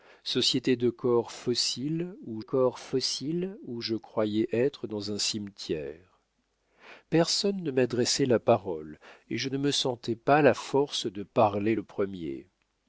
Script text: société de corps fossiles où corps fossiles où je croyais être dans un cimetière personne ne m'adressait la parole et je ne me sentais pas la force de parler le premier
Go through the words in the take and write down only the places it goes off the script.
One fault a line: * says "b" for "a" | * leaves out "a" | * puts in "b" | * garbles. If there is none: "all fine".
all fine